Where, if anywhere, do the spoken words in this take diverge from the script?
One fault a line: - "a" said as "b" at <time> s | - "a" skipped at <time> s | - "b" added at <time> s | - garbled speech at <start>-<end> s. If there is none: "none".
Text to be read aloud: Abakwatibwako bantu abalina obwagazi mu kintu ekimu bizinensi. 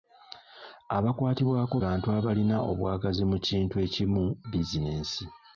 none